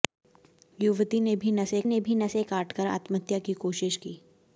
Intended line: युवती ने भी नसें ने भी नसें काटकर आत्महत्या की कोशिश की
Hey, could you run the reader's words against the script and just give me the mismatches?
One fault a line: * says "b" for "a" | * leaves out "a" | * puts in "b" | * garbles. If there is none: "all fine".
all fine